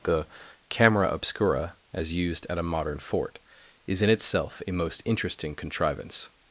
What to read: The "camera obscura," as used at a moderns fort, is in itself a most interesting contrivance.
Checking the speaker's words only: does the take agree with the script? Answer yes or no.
no